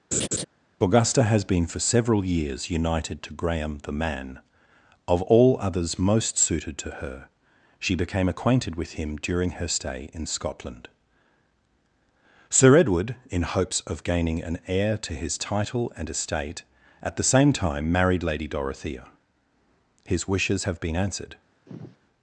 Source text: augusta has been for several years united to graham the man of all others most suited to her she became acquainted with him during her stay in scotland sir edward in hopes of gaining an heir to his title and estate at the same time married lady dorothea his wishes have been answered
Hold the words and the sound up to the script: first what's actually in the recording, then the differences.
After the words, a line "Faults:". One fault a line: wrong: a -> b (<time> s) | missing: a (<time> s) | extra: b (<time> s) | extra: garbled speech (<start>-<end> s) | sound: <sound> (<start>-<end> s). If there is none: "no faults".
augusta has been for several years united to graham the man of all others most suited to her she became acquainted with him during her stay in scotland sir edward in hopes of gaining an heir to his title and estate at the same time married lady dorothea his wishes have been answered
Faults:
sound: laugh (0.1-0.4 s)
sound: sigh (21.7-22.0 s)